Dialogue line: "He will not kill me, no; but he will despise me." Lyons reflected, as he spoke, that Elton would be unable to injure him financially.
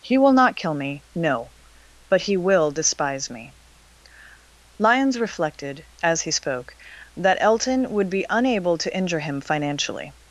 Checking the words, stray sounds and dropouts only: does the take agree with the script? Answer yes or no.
yes